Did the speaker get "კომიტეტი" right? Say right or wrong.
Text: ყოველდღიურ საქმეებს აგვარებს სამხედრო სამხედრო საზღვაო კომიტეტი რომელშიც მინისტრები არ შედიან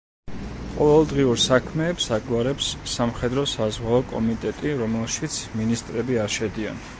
right